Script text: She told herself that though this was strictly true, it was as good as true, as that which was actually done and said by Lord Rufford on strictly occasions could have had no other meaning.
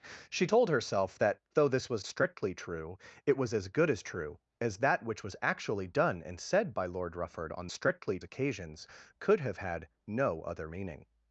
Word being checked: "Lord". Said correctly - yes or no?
yes